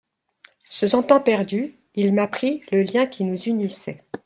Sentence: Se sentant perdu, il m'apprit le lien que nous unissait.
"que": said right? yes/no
no